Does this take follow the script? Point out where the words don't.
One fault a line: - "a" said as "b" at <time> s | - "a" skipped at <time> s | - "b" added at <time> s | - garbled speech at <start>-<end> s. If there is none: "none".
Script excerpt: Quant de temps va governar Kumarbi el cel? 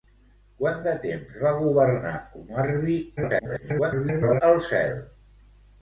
- garbled speech at 3.2-4.4 s